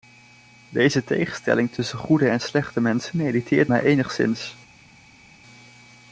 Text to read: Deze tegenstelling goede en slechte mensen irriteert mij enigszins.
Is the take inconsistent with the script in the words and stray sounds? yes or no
yes